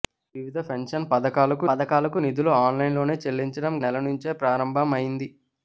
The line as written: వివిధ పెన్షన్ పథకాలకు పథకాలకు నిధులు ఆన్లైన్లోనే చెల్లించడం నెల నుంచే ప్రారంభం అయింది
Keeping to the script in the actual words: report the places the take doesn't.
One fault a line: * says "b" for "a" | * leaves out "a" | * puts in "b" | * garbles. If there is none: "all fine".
all fine